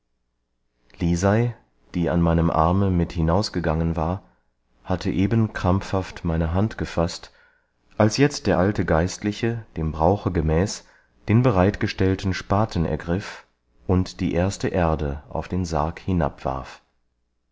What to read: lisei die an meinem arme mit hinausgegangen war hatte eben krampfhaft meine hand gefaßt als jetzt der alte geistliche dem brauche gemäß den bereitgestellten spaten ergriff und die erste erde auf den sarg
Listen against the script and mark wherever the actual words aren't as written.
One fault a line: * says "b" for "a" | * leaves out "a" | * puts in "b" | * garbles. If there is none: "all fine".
all fine